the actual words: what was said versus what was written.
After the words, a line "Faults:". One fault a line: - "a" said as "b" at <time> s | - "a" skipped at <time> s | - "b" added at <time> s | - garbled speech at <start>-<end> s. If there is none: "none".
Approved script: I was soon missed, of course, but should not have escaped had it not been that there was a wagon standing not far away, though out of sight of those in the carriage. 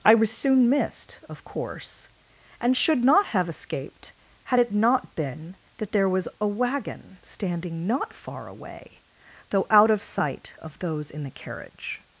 I was soon missed, of course, and should not have escaped had it not been that there was a wagon standing not far away, though out of sight of those in the carriage.
Faults:
- "but" said as "and" at 2.6 s